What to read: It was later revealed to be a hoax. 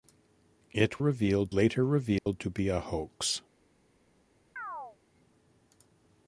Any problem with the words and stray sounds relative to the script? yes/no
yes